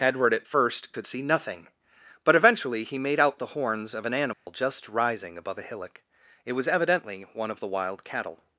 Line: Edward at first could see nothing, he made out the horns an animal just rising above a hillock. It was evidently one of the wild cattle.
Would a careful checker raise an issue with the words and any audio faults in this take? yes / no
yes